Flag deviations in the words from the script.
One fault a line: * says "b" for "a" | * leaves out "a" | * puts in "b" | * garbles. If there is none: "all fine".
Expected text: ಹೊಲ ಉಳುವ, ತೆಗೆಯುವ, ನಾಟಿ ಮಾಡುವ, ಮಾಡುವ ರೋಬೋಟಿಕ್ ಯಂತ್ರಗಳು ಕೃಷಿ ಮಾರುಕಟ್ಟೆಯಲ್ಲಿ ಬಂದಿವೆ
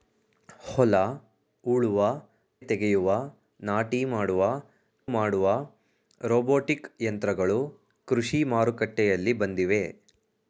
all fine